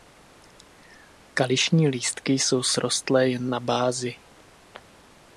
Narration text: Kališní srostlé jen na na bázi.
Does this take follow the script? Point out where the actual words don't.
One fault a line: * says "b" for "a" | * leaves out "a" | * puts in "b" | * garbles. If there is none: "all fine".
* puts in "lístky jsou"
* leaves out "na"